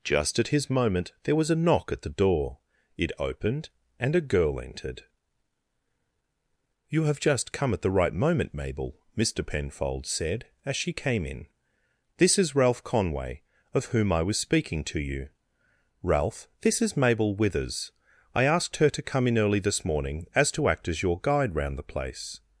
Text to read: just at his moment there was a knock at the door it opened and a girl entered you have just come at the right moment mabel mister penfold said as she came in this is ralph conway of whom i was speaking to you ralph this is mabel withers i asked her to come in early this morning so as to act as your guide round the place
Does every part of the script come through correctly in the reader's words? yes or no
no